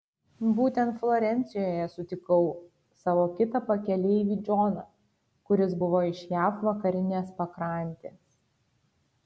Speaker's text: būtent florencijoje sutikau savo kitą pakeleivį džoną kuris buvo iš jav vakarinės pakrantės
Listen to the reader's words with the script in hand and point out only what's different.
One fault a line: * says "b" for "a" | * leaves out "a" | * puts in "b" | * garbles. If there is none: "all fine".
all fine